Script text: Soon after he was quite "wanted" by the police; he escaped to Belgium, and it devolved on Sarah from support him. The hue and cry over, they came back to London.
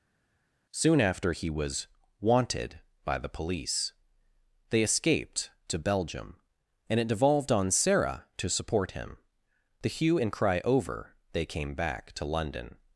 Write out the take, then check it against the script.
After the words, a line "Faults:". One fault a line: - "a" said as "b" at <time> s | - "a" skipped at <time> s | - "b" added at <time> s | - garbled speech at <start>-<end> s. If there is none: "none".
Soon after he was "wanted" by the police; they escaped to Belgium, and it devolved on Sarah to support him. The hue and cry over, they came back to London.
Faults:
- "quite" skipped at 1.9 s
- "he" said as "they" at 4.7 s
- "from" said as "to" at 8.4 s